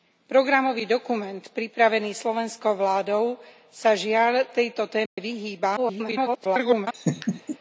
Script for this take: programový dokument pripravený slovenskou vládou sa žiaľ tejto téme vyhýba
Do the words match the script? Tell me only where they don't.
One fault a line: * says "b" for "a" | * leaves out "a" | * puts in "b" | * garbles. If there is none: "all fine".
* garbles